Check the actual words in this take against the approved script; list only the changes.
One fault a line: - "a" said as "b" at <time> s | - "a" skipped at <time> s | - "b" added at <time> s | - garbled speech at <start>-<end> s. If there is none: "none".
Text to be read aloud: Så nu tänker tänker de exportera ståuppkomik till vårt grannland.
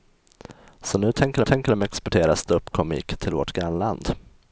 none